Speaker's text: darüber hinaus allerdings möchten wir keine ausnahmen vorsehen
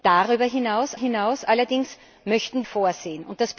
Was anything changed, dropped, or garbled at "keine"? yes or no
yes